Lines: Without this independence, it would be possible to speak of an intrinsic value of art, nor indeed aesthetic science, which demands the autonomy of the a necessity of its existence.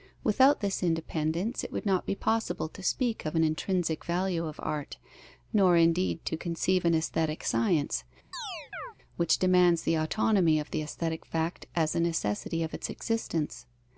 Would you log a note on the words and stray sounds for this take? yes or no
yes